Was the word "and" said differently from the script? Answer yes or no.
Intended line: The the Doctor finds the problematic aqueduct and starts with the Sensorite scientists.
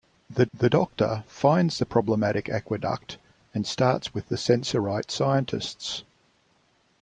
no